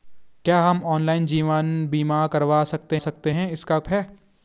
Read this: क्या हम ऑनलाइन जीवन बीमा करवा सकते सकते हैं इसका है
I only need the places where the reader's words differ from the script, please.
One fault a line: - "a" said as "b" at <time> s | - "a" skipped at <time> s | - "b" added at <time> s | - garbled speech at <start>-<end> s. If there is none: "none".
none